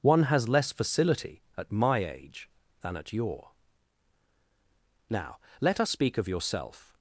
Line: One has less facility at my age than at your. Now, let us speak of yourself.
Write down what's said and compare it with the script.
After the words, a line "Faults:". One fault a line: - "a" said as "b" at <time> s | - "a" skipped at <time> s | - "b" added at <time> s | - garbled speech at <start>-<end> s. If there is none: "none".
One has less facility at my age than at your. Now, let us speak of yourself.
Faults:
none